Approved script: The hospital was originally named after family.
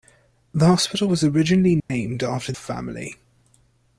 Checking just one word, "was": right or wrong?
right